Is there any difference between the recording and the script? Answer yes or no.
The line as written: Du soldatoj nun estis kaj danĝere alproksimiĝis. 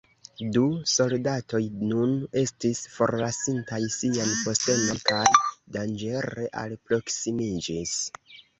yes